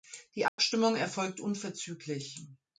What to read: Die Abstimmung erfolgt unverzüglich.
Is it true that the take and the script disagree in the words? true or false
false